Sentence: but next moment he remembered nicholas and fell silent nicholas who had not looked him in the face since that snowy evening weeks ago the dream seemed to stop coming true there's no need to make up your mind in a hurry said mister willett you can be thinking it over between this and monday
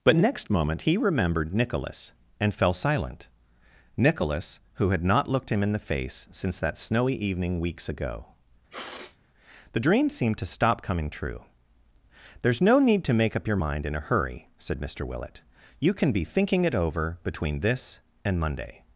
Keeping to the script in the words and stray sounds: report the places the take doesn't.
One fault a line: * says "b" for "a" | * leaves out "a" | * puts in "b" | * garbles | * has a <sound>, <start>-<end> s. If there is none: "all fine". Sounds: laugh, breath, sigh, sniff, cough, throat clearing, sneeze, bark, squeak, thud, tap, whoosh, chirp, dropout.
* has a sniff, 8.7-9.2 s